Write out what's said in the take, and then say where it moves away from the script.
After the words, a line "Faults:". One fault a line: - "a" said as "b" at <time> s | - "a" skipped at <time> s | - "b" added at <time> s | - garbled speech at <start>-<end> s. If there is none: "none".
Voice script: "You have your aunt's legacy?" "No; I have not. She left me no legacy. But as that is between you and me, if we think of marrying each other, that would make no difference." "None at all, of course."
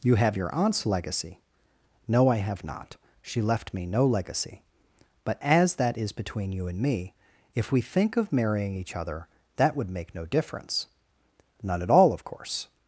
"You have your aunt's legacy?" "No; I have not. She left me no legacy. But as that is between you and me, if we think of marrying each other, that would make no difference." "None at all, of course."
Faults:
none